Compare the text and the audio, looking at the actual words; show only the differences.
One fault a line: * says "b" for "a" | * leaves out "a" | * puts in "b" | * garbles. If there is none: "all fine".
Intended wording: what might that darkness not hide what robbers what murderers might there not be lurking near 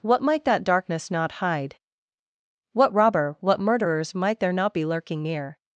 * says "robber" for "robbers"